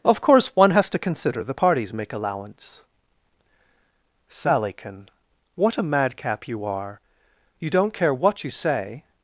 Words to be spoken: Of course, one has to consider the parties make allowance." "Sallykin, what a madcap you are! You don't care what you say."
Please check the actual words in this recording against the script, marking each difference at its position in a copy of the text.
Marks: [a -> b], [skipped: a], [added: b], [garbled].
Of course, one has to consider the parties make allowance." "Sallykin, what a madcap you are! You don't care what you say."